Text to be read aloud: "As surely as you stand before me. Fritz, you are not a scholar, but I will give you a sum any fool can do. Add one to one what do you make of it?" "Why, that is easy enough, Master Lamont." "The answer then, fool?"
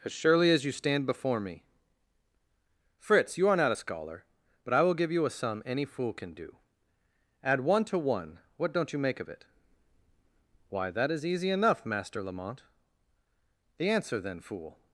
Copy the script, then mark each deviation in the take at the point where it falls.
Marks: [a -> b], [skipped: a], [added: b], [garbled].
"As surely as you stand before me. Fritz, you are not a scholar, but I will give you a sum any fool can do. Add one to one what [do -> don't] you make of it?" "Why, that is easy enough, Master Lamont." "The answer then, fool?"